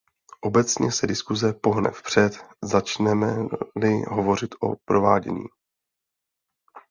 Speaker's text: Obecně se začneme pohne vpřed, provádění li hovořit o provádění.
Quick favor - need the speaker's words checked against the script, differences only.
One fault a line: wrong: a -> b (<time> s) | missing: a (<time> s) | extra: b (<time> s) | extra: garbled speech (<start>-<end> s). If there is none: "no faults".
wrong: začneme -> diskuse (1.1 s)
wrong: provádění -> začneme (2.6 s)